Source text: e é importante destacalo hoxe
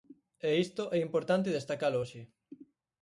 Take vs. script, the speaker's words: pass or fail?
fail